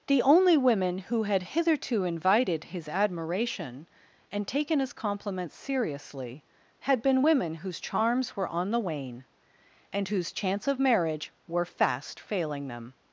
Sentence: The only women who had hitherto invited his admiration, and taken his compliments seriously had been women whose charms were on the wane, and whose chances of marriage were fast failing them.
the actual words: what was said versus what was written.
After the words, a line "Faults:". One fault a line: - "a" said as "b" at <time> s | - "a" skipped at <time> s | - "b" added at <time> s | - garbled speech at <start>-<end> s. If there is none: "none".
The only women who had hitherto invited his admiration, and taken his compliments seriously had been women whose charms were on the wane, and whose chance of marriage were fast failing them.
Faults:
- "chances" said as "chance" at 10.3 s